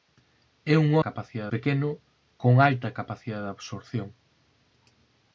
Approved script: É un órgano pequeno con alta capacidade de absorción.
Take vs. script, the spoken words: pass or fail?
fail